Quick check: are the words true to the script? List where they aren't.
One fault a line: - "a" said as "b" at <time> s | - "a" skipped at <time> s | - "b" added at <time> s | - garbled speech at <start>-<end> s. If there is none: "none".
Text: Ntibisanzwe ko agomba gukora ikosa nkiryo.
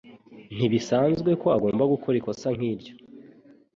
none